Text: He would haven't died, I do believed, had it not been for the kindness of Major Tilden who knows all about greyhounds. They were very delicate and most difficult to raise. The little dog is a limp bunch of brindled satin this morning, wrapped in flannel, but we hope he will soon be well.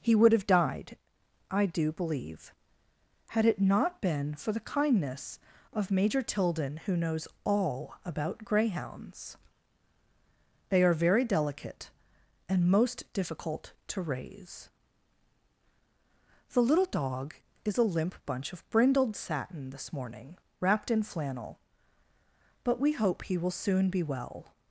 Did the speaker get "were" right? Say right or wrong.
wrong